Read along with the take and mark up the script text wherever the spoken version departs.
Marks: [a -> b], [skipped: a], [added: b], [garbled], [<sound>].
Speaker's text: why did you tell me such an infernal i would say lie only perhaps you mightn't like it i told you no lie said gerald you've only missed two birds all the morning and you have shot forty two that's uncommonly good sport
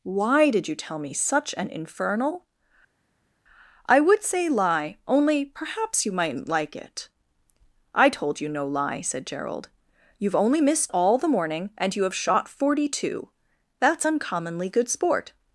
why did you tell me such an infernal i would say lie only perhaps you mightn't like it i told you no lie said gerald you've only missed [skipped: two birds] all the morning and you have shot forty two that's uncommonly good sport